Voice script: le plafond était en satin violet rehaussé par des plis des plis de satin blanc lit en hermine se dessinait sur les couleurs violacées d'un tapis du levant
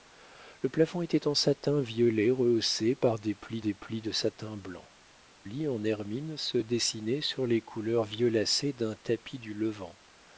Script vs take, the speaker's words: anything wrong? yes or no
no